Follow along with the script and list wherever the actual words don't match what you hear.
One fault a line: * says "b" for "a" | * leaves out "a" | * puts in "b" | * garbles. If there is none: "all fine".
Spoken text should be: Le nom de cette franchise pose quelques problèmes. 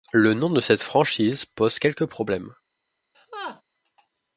all fine